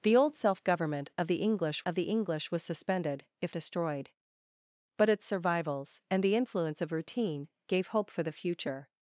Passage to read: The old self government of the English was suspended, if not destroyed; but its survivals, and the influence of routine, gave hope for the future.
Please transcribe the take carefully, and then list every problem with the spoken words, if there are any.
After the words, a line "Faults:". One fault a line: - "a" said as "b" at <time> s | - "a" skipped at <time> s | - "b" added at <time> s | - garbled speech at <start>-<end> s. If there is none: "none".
The old self government of the English of the English was suspended, if destroyed; but its survivals, and the influence of routine, gave hope for the future.
Faults:
- "of the English" added at 1.8 s
- "not" skipped at 3.5 s